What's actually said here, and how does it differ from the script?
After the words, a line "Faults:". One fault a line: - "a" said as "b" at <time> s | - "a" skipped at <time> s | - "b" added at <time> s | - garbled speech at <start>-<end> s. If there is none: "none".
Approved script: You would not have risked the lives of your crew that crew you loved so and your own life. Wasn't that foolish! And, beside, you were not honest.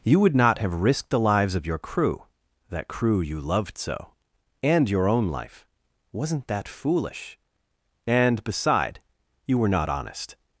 You would not have risked the lives of your crew that crew you loved so and your own life. Wasn't that foolish! And, beside, you were not honest.
Faults:
none